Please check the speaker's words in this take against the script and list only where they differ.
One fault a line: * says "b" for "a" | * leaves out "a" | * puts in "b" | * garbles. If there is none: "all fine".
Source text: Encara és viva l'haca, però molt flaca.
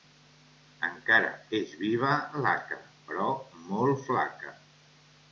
all fine